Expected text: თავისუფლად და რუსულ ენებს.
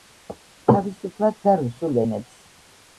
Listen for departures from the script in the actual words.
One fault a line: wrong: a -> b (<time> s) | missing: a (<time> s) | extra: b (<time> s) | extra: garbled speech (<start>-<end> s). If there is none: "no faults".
no faults